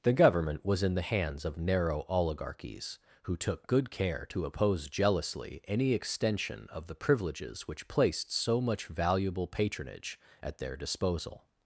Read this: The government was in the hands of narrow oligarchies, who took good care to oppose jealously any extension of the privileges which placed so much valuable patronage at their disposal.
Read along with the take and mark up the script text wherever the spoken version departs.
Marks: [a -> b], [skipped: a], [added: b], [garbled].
The government was in the hands of narrow oligarchies, who took good care to oppose jealously any extension of the privileges which placed so much valuable patronage at their disposal.